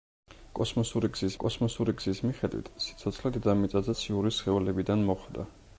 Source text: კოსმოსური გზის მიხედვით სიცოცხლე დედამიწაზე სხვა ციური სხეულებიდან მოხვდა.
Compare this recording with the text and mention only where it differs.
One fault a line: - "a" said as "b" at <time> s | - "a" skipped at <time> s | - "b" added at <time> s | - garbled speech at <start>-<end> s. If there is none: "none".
- "კოსმოსური გზის" added at 1.4 s
- "სხვა" skipped at 3.9 s